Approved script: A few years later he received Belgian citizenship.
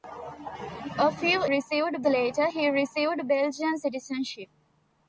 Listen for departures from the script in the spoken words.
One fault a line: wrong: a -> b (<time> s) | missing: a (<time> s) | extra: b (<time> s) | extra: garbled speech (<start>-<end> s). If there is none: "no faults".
wrong: years -> received (1.4 s)